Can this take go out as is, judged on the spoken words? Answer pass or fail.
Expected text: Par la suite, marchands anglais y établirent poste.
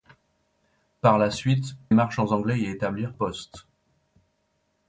pass